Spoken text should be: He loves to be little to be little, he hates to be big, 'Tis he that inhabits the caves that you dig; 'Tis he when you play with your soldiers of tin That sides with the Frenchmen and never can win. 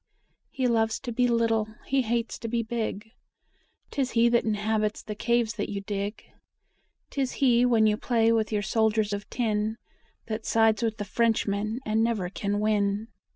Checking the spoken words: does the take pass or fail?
fail